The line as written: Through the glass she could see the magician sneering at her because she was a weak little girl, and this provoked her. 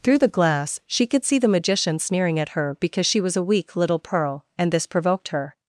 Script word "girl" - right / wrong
wrong